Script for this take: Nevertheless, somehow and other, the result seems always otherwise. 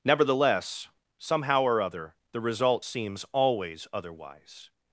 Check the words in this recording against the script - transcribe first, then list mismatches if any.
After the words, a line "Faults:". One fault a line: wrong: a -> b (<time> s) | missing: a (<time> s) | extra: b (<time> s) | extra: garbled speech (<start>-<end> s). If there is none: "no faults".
Nevertheless, somehow or other, the result seems always otherwise.
Faults:
wrong: and -> or (1.6 s)